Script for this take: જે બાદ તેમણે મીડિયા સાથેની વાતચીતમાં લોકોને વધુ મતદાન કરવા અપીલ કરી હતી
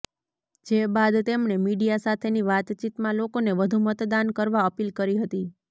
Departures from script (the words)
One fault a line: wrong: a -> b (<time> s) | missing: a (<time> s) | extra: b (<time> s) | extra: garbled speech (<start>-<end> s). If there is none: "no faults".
no faults